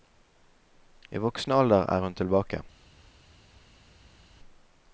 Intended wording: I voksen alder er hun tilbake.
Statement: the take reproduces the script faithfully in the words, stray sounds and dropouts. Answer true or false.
true